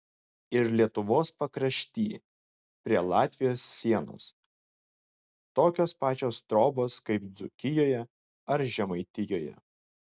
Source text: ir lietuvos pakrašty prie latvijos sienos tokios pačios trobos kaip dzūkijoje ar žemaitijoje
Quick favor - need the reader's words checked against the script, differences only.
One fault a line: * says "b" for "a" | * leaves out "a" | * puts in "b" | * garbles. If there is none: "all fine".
all fine